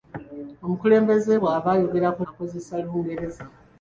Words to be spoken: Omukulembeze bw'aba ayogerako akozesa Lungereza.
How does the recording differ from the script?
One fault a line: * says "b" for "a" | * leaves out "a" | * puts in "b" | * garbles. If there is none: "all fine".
all fine